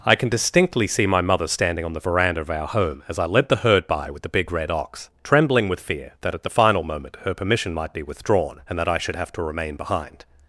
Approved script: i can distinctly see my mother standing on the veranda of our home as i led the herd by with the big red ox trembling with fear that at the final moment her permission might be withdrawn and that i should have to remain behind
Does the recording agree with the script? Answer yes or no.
yes